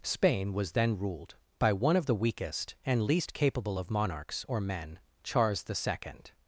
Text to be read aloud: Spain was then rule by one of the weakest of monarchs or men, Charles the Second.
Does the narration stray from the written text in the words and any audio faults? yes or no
yes